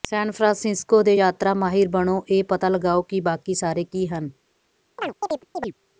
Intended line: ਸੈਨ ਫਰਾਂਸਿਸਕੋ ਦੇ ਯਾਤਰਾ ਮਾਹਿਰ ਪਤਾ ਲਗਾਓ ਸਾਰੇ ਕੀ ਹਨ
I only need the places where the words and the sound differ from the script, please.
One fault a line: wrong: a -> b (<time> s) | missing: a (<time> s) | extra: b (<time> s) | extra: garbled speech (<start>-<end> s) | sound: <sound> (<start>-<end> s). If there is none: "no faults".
extra: ਬਣੋ ਇਹ (1.9 s)
extra: ਕਿ ਬਾਕੀ (3.0 s)
sound: chirp (5.0-5.7 s)